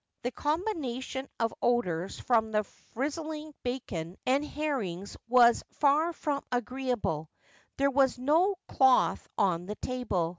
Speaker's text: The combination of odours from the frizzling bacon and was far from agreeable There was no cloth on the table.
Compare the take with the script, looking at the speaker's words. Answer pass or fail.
fail